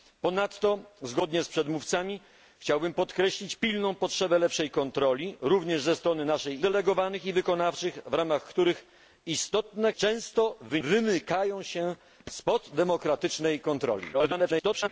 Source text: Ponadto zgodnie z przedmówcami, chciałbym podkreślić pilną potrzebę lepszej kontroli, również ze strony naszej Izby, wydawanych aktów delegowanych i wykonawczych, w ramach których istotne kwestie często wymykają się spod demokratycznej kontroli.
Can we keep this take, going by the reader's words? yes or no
no